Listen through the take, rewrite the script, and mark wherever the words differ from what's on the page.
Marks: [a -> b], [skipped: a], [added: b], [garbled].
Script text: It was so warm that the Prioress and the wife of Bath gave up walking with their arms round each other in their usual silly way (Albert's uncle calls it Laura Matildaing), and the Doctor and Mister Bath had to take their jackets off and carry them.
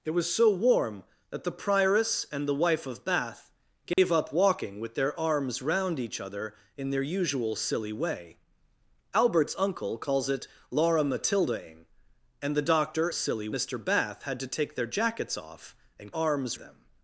It was so warm that the Prioress and the wife of Bath gave up walking with their arms round each other in their usual silly way (Albert's uncle calls it Laura Matildaing), and the Doctor [and -> silly] Mister Bath had to take their jackets off and [carry -> arms] them.